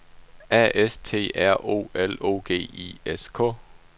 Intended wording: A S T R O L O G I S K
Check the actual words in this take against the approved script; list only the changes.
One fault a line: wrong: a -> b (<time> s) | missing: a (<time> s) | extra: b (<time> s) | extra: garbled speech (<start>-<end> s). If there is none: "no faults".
no faults